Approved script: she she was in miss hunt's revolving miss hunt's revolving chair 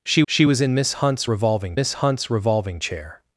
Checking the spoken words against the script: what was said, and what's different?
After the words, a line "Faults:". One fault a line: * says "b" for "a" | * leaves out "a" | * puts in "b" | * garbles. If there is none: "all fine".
she she was in miss hunt's revolving miss hunt's revolving chair
Faults:
all fine